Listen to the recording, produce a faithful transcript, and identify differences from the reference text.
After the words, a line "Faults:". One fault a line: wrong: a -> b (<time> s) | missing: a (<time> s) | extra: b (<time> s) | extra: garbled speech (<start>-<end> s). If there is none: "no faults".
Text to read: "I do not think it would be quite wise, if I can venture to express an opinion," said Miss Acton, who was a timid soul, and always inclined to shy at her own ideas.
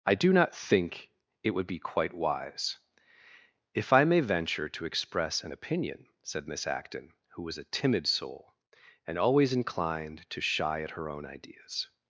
"I do not think it would be quite wise, if I may venture to express an opinion," said Miss Acton, who was a timid soul, and always inclined to shy at her own ideas.
Faults:
wrong: can -> may (4.0 s)